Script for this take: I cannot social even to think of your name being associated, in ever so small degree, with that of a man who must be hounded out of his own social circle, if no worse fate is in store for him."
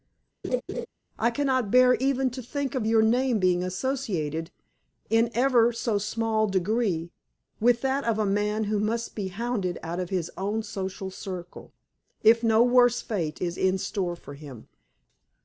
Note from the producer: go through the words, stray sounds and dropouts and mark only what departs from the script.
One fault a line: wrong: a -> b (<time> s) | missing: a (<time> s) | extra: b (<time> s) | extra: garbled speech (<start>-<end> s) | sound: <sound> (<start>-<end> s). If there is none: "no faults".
sound: laugh (0.4-0.9 s)
wrong: social -> bear (1.7 s)